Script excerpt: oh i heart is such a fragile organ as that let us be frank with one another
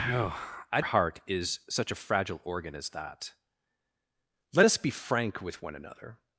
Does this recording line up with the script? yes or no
yes